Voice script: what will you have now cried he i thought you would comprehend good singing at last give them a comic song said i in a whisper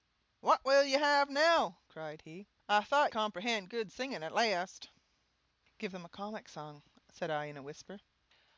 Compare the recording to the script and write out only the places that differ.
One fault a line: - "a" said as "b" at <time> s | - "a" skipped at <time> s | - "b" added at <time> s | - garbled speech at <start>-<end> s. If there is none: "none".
- "you would" skipped at 3.1 s